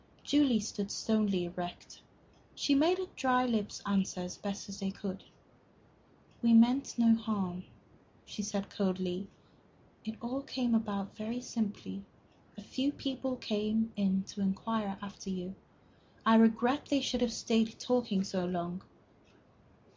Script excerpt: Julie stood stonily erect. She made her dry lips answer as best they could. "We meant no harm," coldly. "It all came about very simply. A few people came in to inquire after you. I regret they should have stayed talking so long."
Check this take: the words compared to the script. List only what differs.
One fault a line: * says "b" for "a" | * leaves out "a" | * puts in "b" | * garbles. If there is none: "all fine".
* puts in "she said"